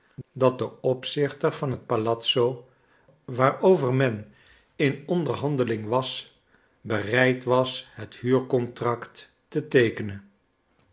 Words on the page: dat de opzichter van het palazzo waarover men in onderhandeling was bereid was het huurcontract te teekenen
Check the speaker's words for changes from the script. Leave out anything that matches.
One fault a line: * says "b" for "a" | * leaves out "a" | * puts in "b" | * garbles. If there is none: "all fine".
all fine